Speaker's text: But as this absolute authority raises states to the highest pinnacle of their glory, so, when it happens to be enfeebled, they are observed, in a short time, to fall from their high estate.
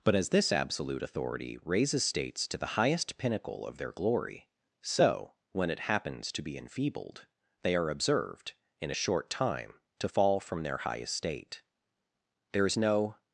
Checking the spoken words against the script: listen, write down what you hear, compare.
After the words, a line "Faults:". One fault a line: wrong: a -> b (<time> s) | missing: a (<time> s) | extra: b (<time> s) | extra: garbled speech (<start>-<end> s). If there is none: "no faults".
But as this absolute authority raises states to the highest pinnacle of their glory, so, when it happens to be enfeebled, they are observed, in a short time, to fall from their high estate. There is no
Faults:
extra: There is no (12.5 s)